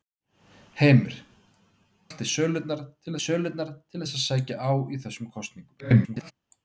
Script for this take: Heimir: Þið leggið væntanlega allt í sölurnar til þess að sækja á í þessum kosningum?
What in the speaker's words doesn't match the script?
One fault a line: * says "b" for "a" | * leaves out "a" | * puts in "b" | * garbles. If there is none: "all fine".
* says "Allt í sölurnar til" for "Þið leggið væntanlega allt í"
* garbles